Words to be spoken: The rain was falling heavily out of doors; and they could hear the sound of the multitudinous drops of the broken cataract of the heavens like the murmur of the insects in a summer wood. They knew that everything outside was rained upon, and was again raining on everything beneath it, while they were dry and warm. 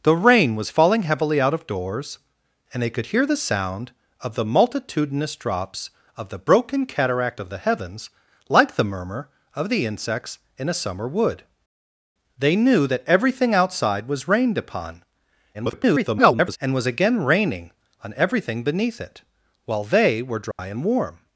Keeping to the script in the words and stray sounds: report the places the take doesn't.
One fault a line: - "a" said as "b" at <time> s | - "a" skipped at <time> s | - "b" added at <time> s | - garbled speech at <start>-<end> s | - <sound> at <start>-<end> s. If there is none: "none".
- garbled speech at 15.5-16.6 s
- dropout at 20.5-20.6 s